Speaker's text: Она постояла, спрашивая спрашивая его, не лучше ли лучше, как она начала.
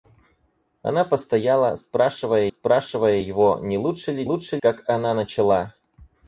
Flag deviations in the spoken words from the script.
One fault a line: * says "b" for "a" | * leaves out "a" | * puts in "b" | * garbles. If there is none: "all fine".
all fine